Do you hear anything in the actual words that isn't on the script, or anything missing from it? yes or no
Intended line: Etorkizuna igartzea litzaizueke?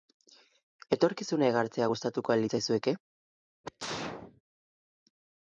yes